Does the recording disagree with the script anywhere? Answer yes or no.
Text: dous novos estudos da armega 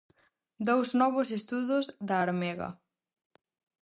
no